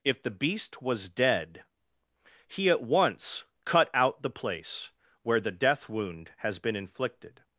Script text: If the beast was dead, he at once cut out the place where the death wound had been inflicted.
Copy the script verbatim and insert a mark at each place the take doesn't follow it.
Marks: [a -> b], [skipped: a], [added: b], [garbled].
If the beast was dead, he at once cut out the place where the death wound [had -> has] been inflicted.